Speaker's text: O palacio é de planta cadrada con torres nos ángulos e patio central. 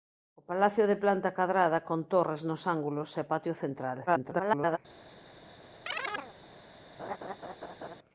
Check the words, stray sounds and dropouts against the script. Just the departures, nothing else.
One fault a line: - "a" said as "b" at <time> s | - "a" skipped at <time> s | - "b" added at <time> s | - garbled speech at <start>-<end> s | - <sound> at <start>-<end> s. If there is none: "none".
- garbled speech at 4.1-4.8 s
- chirp at 5.9-6.3 s
- laugh at 7.0-8.0 s